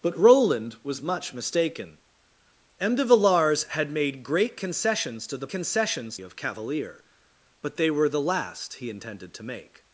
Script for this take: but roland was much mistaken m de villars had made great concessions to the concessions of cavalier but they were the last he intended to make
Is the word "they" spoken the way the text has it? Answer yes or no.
yes